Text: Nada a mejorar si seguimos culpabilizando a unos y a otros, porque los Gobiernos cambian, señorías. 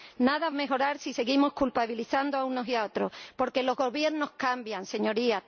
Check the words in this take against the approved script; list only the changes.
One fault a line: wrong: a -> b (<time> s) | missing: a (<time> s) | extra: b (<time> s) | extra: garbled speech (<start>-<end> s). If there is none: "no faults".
no faults